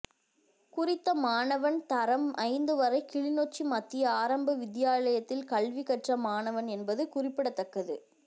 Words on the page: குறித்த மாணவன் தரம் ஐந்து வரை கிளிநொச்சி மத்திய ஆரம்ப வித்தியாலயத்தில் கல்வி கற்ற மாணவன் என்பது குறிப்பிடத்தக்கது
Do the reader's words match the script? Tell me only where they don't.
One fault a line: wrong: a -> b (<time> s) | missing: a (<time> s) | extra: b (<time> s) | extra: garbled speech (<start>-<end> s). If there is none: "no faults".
no faults